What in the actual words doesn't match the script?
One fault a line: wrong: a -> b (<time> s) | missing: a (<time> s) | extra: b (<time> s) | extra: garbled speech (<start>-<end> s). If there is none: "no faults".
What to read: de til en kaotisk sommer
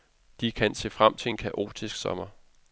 extra: kan se frem (0.5 s)